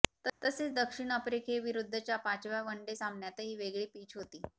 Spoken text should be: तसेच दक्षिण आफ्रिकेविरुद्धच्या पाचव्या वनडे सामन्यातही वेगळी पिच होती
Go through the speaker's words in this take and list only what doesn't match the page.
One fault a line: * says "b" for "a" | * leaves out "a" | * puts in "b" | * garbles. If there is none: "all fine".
all fine